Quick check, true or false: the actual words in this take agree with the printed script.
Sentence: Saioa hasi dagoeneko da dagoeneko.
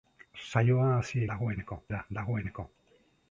true